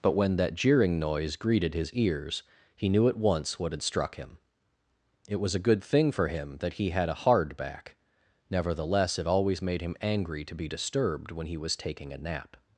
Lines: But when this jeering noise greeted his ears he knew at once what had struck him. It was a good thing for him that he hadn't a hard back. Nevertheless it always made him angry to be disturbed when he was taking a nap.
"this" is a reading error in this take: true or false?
true